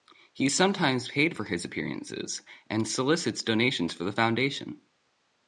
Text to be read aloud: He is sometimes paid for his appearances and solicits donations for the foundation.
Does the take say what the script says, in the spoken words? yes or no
yes